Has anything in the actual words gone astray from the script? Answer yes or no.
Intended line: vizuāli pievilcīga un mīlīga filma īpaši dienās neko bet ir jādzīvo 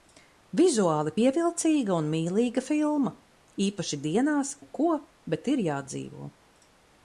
no